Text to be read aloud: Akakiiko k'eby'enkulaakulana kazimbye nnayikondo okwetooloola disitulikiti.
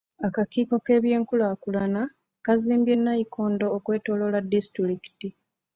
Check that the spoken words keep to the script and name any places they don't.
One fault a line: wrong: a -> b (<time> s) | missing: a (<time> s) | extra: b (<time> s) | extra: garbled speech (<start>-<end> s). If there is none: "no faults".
no faults